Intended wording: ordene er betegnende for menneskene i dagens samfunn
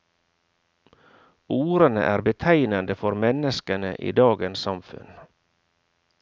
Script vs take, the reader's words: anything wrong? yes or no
no